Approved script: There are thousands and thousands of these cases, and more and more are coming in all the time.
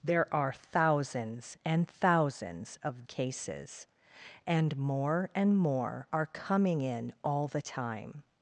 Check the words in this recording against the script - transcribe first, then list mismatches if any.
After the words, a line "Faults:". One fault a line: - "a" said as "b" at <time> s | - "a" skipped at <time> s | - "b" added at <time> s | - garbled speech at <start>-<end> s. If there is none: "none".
There are thousands and thousands of cases, and more and more are coming in all the time.
Faults:
- "these" skipped at 3.0 s